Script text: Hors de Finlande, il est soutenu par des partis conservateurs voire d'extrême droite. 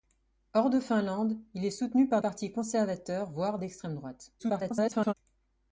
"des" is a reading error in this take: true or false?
true